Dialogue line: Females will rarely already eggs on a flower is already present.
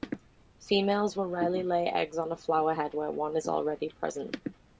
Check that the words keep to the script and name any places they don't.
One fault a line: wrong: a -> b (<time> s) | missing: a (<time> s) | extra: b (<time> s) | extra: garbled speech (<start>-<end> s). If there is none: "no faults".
wrong: already -> lay (1.6 s)
extra: head where one (2.7 s)